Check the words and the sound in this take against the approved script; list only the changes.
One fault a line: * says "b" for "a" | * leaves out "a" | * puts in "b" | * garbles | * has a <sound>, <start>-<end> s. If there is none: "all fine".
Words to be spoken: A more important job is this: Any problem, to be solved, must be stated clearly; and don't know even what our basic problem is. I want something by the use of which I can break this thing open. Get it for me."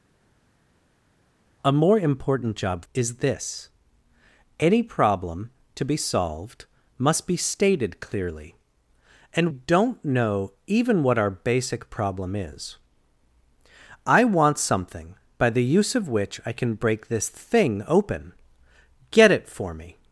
all fine